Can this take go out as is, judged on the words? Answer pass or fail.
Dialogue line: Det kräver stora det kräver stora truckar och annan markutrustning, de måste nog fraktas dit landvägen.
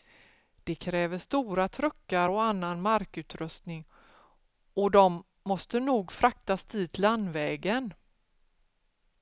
fail